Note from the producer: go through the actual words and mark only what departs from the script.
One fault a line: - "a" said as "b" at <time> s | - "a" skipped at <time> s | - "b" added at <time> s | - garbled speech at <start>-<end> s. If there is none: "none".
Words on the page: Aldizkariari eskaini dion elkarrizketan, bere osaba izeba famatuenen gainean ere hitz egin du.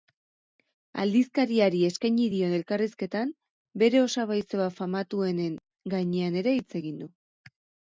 none